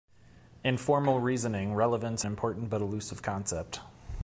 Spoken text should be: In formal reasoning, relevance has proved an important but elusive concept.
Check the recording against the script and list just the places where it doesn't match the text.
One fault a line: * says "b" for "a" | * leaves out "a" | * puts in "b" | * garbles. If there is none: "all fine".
* leaves out "has proved an"